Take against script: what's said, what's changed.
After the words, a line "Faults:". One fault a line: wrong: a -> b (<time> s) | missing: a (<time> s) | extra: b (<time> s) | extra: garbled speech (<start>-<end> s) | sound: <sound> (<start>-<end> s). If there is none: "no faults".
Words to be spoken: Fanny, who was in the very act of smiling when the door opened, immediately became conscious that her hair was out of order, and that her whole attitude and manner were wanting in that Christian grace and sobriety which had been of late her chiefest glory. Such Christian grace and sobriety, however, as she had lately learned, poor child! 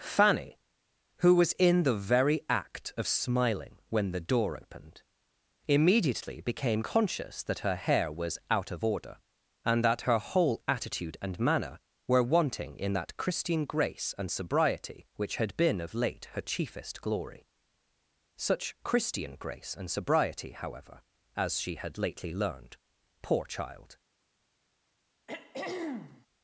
Fanny, who was in the very act of smiling when the door opened, immediately became conscious that her hair was out of order, and that her whole attitude and manner were wanting in that Christian grace and sobriety which had been of late her chiefest glory. Such Christian grace and sobriety, however, as she had lately learned, poor child!
Faults:
sound: throat clearing (25.3-26.3 s)